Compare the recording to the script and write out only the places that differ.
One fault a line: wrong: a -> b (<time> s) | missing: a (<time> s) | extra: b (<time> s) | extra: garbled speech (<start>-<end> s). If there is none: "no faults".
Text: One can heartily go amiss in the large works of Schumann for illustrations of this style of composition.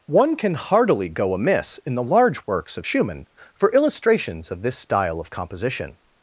no faults